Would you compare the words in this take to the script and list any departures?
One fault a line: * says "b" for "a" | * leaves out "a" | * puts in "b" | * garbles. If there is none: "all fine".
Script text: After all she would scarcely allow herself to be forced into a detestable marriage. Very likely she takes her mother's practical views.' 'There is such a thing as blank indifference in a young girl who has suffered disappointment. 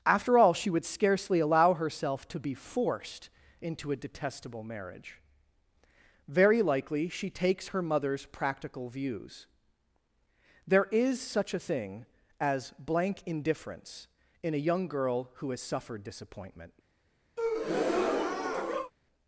all fine